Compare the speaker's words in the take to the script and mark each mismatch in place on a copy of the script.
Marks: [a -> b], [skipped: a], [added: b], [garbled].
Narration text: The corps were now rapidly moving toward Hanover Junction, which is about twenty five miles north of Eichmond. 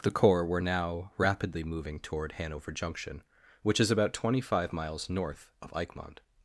The corps were now rapidly moving toward Hanover Junction, which is about twenty five miles north of Eichmond.